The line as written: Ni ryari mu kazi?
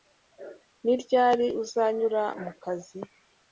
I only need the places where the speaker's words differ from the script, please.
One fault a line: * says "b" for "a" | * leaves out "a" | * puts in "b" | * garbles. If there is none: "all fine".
* puts in "uzanyura"